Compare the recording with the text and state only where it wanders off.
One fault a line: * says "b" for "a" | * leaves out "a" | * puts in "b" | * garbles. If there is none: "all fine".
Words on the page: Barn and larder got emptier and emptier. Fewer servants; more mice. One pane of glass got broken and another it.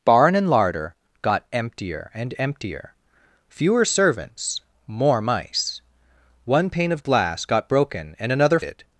all fine